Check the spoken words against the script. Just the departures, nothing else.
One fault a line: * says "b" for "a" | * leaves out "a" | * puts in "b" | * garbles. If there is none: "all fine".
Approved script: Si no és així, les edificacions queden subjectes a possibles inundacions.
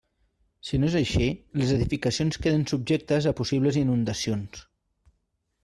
all fine